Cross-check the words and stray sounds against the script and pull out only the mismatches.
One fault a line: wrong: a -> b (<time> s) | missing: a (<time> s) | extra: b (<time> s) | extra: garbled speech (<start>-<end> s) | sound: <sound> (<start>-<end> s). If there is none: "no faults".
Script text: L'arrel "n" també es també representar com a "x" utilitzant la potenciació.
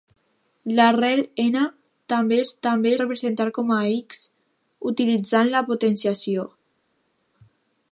no faults